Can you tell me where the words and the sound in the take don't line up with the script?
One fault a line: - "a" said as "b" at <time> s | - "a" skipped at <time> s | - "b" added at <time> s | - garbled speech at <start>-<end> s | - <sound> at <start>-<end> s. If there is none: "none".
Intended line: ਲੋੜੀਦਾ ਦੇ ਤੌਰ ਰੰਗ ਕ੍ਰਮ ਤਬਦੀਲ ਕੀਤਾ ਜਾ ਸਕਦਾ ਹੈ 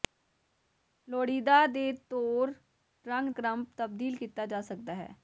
none